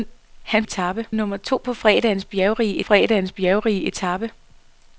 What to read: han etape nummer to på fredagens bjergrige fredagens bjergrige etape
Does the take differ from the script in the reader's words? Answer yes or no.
no